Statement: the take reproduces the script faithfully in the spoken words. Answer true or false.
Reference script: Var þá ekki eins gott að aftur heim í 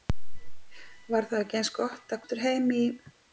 true